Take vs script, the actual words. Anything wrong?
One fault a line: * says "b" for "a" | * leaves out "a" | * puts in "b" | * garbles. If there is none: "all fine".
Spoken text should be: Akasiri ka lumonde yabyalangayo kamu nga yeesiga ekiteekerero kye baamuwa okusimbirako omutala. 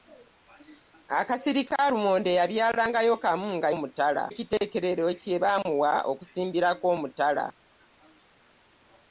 * says "omutala" for "yeesiga"